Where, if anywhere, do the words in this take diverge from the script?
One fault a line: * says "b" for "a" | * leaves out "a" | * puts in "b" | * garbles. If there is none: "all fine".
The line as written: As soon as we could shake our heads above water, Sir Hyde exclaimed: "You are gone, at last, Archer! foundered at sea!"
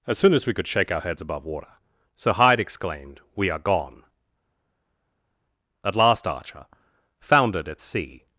* says "We" for "You"